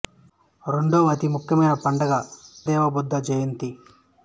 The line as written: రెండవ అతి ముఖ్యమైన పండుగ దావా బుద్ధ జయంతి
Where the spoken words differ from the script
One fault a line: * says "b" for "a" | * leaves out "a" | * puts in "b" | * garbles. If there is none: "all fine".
all fine